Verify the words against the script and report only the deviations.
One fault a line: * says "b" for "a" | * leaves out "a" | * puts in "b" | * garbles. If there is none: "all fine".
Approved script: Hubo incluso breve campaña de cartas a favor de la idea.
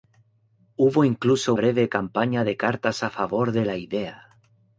all fine